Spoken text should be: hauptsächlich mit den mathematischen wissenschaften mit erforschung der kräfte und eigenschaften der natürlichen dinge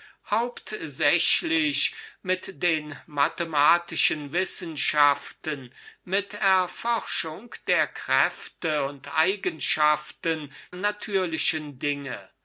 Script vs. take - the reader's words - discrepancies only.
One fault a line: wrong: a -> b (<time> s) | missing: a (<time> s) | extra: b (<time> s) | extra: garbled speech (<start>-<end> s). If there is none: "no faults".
missing: der (10.5 s)